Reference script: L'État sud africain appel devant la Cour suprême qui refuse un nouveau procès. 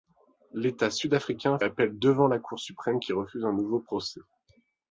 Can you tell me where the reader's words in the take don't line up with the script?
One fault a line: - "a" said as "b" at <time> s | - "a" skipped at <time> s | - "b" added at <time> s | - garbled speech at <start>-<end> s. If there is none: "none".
none